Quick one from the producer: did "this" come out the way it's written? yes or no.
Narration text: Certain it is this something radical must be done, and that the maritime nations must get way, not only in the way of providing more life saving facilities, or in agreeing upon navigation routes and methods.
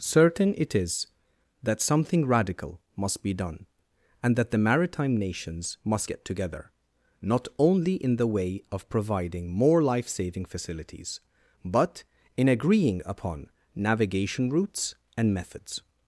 no